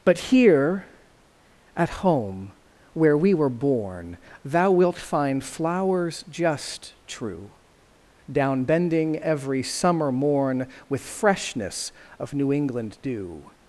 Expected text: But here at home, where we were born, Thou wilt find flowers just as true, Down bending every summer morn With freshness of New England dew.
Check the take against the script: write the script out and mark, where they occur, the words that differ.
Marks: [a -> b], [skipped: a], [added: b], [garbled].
But here at home, where we were born, Thou wilt find flowers just [skipped: as] true, Down bending every summer morn With freshness of New England dew.